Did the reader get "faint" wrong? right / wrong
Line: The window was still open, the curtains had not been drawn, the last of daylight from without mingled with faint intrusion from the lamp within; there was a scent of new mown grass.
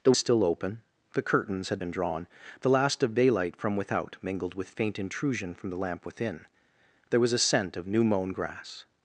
right